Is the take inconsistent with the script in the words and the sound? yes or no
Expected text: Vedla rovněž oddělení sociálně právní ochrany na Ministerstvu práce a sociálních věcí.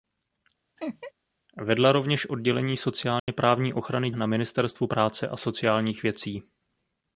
yes